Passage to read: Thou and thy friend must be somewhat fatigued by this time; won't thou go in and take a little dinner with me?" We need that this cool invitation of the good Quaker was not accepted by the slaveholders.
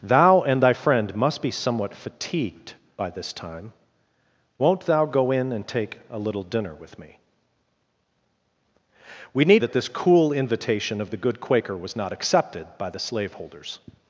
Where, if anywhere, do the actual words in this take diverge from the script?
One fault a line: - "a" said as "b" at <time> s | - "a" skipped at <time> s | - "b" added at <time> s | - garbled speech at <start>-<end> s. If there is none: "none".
none